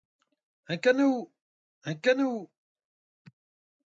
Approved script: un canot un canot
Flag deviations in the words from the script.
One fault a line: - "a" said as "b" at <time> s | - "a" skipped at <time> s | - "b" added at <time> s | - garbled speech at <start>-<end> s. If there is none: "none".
none